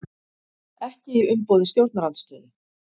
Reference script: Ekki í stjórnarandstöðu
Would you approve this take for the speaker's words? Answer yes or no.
no